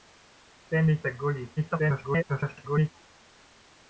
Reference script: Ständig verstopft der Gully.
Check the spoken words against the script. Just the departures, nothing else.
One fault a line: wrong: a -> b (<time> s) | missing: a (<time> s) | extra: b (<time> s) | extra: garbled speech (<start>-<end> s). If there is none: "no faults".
missing: verstopft (1.0 s)
extra: garbled speech (1.6-2.9 s)